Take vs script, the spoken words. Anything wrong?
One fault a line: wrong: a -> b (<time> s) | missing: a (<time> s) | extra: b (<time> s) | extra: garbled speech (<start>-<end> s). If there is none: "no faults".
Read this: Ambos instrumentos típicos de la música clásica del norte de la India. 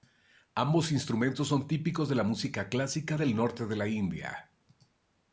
extra: son (1.5 s)